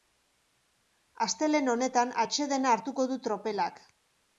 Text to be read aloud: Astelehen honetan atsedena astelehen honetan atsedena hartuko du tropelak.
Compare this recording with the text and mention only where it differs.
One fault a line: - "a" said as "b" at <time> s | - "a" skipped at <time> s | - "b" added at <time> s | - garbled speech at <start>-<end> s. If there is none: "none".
- "astelehen honetan atsedena" skipped at 2.8 s